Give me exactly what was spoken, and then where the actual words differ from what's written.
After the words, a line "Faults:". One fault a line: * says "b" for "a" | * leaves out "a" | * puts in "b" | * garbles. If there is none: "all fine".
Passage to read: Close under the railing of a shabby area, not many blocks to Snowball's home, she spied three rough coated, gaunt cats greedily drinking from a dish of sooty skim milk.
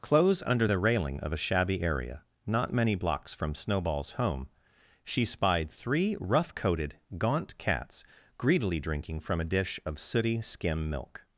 Close under the railing of a shabby area, not many blocks from Snowball's home, she spied three rough coated, gaunt cats greedily drinking from a dish of sooty skim milk.
Faults:
* says "from" for "to"